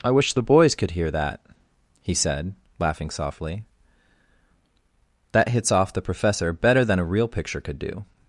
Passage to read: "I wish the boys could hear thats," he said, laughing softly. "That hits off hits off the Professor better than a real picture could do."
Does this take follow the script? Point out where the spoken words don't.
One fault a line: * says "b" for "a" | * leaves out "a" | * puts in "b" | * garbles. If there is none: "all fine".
* says "that" for "thats"
* leaves out "hits off"